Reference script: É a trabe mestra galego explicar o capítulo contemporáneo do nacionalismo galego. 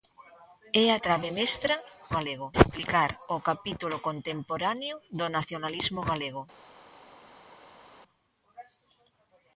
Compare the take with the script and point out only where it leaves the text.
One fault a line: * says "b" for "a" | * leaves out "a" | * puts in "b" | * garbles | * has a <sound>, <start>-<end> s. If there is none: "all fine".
all fine